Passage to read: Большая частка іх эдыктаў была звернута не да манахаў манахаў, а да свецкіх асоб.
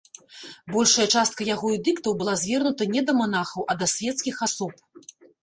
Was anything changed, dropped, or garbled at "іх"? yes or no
yes